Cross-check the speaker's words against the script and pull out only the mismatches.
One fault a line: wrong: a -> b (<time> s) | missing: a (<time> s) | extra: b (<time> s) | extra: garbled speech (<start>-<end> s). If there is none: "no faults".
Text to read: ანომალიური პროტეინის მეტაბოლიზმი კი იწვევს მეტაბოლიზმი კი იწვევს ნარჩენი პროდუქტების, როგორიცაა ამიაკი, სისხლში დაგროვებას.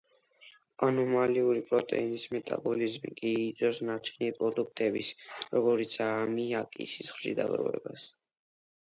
missing: მეტაბოლიზმი კი იწვევს (3.8 s)